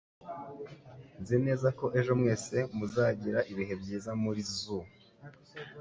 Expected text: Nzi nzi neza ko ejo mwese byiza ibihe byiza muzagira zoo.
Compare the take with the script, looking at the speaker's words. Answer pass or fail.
fail